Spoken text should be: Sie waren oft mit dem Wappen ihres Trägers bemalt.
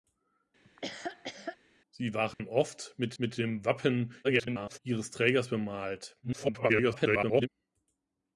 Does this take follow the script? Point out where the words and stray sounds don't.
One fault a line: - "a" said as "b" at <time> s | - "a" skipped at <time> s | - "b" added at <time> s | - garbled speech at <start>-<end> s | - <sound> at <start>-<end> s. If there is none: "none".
- laugh at 0.6-1.6 s
- dropout at 2.3-2.4 s
- "mit" added at 3.2 s
- garbled speech at 4.2-4.8 s
- garbled speech at 6.2-7.5 s